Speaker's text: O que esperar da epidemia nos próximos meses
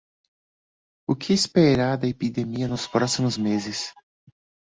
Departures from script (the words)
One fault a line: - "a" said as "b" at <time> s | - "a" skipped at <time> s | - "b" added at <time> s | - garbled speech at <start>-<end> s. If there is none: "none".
none